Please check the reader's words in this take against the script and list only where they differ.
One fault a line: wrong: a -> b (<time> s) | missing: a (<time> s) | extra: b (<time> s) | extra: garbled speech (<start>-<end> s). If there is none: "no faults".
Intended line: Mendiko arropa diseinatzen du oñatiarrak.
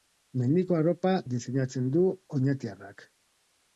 no faults